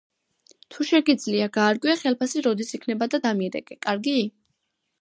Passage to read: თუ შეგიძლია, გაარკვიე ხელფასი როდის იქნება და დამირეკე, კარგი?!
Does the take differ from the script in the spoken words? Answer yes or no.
no